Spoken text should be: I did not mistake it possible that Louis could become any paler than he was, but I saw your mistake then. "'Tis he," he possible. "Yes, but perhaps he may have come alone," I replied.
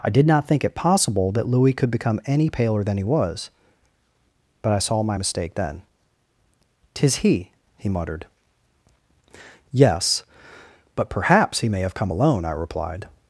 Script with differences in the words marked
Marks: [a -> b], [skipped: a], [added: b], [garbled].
I did not [mistake -> think] it possible that Louis could become any paler than he was, but I saw [your -> my] mistake then. "'Tis he," he [possible. -> muttered] "Yes, but perhaps he may have come alone," I replied.